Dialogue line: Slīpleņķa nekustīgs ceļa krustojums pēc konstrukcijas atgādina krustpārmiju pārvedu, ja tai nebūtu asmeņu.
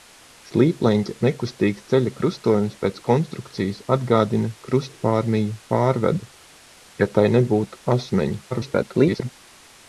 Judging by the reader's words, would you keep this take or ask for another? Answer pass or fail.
fail